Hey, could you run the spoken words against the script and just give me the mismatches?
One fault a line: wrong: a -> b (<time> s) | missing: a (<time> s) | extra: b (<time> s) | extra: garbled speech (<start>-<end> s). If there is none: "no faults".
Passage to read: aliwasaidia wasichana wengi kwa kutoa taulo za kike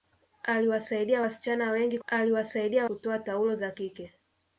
wrong: kwa -> aliwasaidia (2.1 s)